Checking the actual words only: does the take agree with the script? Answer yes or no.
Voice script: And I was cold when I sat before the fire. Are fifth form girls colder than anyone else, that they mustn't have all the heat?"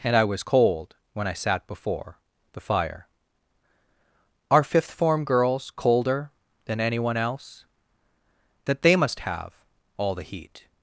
no